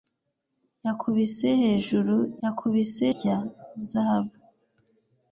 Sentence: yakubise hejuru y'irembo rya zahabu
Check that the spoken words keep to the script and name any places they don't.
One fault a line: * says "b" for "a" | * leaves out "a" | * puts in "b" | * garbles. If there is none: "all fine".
* says "yakubise" for "y'irembo"